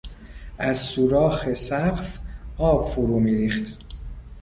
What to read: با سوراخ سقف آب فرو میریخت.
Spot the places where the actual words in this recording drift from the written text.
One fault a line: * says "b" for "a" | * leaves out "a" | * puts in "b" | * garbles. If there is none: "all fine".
* says "از" for "با"